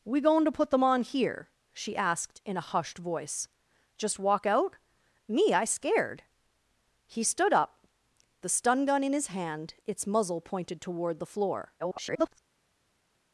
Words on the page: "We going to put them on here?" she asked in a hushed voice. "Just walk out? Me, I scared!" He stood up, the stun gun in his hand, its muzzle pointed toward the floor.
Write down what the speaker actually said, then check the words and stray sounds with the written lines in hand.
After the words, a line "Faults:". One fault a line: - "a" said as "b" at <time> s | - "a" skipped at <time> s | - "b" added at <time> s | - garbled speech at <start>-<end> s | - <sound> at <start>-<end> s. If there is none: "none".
"We going to put them on here?" she asked in a hushed voice. "Just walk out? Me, I scared!" He stood up, the stun gun in his hand, its muzzle pointed toward the floor. [garbled]
Faults:
- garbled speech at 11.8-12.4 s